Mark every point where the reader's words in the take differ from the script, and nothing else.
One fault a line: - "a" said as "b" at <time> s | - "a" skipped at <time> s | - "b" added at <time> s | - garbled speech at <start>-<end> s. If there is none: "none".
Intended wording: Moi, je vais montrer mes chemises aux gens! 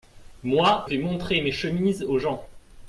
- "je" skipped at 0.9 s